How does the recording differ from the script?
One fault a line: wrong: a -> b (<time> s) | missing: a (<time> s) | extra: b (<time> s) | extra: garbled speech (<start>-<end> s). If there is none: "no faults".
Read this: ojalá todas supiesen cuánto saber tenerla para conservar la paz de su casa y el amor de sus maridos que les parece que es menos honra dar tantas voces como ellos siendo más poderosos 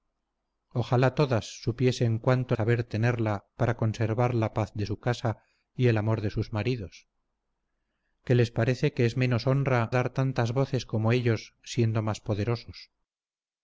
no faults